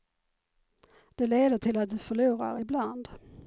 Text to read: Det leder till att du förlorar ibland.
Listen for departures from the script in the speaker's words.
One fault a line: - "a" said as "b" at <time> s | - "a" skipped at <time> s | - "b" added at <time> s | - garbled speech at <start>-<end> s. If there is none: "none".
none